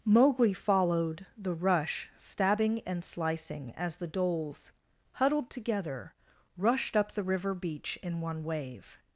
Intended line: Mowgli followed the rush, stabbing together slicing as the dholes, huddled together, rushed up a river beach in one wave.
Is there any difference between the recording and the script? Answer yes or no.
yes